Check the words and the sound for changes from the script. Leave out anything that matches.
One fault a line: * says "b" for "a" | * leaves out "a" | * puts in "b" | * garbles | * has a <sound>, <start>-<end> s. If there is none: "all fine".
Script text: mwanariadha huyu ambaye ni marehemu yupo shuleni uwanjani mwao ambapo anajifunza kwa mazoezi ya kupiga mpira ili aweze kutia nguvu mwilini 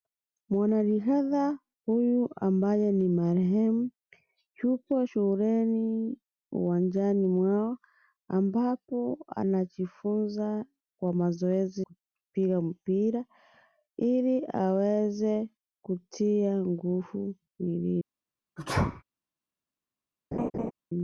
* leaves out "ya"
* has a sneeze, 18.6-19.0 s
* has a laugh, 20.3-20.7 s